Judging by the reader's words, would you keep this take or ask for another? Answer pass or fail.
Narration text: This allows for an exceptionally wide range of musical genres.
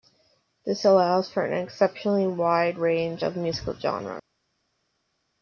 pass